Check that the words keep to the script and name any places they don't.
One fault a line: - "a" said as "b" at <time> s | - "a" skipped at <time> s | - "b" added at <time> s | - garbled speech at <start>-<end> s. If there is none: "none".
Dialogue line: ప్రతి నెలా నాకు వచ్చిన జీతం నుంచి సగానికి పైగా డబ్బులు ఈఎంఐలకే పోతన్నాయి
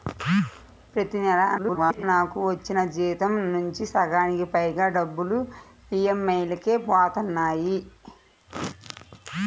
- garbled speech at 1.6-2.0 s